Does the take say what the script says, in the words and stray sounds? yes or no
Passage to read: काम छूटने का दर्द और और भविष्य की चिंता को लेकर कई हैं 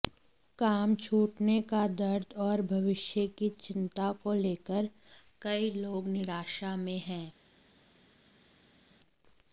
no